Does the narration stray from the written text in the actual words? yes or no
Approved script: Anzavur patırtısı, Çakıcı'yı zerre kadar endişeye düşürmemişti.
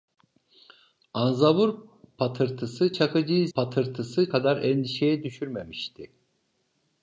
yes